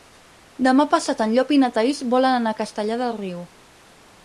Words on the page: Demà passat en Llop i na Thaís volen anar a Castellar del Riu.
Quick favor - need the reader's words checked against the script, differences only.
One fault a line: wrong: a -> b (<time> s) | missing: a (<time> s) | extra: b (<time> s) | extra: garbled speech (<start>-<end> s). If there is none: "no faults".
no faults